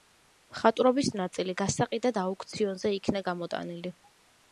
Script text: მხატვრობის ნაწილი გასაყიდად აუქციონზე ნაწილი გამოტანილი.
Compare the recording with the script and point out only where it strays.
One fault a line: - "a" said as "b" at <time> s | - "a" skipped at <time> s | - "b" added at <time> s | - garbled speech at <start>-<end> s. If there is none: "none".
- "ნაწილი" said as "იქნა" at 3.0 s